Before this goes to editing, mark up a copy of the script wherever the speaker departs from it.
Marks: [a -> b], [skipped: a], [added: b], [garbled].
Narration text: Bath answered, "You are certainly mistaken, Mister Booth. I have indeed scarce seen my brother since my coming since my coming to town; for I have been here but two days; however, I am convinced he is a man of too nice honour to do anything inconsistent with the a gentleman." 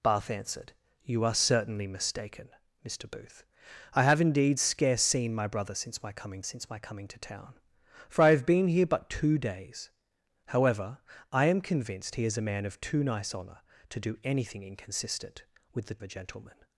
Bath answered, "You are certainly mistaken, Mister Booth. I have indeed scarce seen my brother since my coming since my coming to town; for I have been here but two days; however, I am convinced he is a man of too nice honour to do anything inconsistent with the a gentleman."